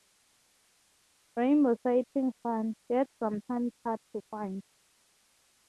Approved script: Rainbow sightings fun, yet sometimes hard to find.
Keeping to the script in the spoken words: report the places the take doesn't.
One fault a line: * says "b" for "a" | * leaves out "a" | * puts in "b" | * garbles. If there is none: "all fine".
all fine